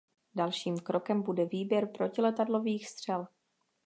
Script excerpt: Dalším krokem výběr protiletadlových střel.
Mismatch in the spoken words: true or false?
true